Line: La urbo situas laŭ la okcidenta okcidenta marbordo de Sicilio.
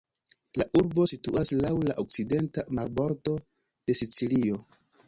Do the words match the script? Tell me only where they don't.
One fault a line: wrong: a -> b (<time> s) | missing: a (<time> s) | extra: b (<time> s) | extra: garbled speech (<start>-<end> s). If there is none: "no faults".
missing: okcidenta (2.7 s)